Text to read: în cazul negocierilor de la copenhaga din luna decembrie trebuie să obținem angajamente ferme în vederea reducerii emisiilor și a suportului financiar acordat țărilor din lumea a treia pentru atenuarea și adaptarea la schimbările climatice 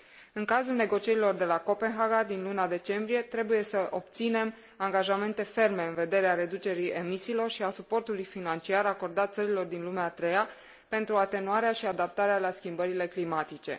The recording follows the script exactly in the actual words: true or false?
true